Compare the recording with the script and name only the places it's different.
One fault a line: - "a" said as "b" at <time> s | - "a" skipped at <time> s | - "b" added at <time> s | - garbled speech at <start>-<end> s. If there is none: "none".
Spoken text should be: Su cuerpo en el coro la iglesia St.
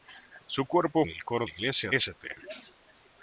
none